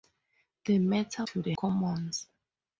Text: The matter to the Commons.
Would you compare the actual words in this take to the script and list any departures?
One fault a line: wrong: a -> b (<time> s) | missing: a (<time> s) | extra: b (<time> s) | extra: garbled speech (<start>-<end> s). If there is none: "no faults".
no faults